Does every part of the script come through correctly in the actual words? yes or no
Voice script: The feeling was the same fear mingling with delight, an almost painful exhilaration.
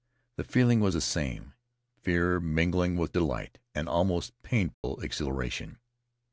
yes